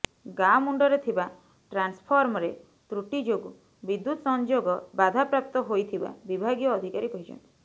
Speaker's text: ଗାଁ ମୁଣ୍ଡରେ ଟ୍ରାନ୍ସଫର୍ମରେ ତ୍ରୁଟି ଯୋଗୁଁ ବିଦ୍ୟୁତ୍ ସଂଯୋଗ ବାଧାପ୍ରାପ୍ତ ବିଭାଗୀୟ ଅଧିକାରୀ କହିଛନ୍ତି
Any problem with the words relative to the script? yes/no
yes